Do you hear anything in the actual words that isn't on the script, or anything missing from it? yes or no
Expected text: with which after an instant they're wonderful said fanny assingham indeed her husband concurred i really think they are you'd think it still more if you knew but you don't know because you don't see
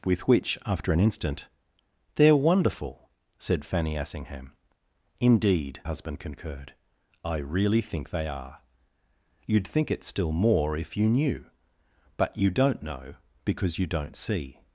yes